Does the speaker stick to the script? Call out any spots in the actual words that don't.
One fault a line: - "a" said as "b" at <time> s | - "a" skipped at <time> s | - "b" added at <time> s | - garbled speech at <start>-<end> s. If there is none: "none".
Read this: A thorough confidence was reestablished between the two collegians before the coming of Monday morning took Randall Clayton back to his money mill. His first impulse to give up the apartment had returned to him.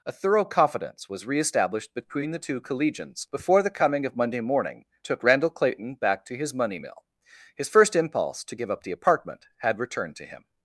none